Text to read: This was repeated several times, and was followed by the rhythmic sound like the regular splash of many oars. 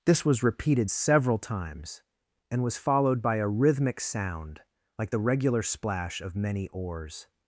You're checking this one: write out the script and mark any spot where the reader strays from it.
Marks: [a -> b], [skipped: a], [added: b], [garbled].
This was repeated several times, and was followed by [the -> a] rhythmic sound like the regular splash of many oars.